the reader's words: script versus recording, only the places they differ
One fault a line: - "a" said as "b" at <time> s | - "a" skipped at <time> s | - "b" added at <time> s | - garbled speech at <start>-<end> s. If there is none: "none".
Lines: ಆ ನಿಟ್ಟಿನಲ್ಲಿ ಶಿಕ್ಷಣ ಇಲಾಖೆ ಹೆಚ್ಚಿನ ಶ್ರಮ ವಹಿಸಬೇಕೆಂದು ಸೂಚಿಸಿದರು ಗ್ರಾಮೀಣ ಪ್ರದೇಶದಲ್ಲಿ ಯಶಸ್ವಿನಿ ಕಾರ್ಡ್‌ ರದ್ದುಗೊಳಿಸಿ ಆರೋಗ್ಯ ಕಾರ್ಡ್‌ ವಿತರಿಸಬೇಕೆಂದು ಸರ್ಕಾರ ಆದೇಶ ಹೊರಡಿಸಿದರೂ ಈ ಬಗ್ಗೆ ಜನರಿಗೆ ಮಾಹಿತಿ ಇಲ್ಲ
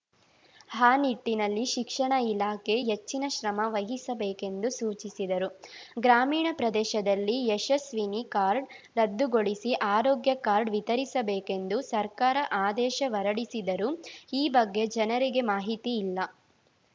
none